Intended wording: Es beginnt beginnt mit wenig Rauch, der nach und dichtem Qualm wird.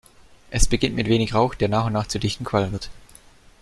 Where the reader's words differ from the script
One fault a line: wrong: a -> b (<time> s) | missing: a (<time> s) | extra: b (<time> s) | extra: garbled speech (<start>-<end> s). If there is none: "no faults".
missing: beginnt (0.9 s)
extra: nach zu (1.9 s)